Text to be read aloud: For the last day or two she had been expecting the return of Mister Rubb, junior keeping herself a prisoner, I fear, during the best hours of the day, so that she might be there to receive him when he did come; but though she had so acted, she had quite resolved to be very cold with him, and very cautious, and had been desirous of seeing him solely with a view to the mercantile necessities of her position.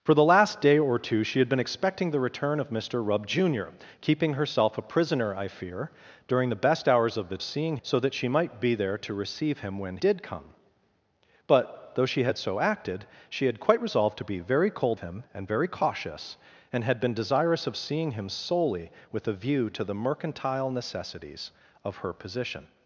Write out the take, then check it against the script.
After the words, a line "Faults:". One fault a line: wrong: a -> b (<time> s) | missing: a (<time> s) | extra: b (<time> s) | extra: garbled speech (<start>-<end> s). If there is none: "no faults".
For the last day or two she had been expecting the return of Mister Rubb, junior keeping herself a prisoner, I fear, during the best hours of the seeing, so that she might be there to receive him when did come; but though she had so acted, she had quite resolved to be very cold him, and very cautious, and had been desirous of seeing him solely with a view to the mercantile necessities of her position.
Faults:
wrong: day -> seeing (7.4 s)
missing: he (10.0 s)
missing: with (15.0 s)